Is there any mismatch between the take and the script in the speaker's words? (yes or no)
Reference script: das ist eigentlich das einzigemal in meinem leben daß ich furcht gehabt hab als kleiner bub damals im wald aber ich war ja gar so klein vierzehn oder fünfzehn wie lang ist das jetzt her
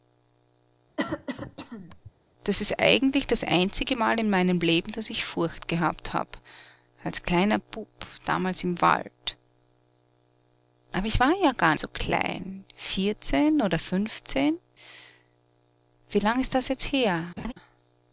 no